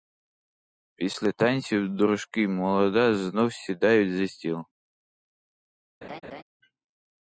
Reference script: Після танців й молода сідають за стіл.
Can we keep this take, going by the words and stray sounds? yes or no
no